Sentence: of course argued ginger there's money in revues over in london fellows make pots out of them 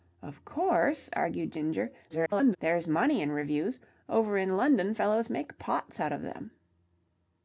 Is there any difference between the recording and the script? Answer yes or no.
yes